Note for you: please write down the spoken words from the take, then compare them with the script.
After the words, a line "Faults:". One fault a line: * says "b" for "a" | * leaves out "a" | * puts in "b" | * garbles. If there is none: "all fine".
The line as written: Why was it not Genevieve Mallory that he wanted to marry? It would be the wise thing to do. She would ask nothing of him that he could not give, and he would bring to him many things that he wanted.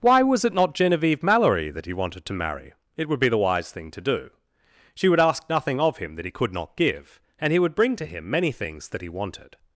Why was it not Genevieve Mallory that he wanted to marry? It would be the wise thing to do. She would ask nothing of him that he could not give, and he would bring to him many things that he wanted.
Faults:
all fine